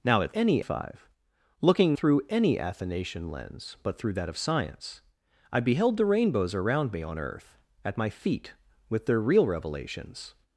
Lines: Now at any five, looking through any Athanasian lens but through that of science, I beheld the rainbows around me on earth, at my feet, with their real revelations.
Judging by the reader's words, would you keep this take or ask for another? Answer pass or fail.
pass